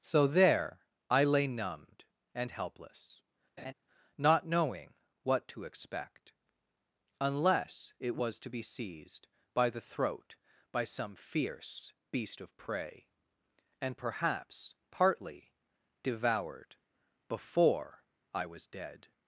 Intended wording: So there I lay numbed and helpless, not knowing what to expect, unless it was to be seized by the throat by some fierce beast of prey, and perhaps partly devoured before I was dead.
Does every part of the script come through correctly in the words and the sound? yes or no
no